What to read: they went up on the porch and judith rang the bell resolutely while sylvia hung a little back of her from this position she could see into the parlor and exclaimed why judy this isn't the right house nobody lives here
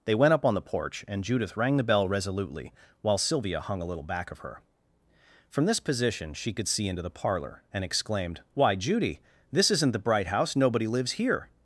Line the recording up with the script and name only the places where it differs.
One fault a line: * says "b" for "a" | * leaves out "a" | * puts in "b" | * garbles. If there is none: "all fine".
* says "bright" for "right"